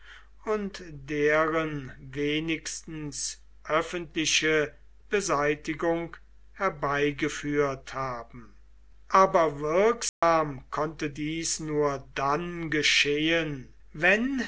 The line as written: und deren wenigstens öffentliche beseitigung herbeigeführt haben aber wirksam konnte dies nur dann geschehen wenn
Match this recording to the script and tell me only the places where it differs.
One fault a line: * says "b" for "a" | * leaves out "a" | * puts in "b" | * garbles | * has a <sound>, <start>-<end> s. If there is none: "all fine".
* has a dropout, 10.1-10.2 s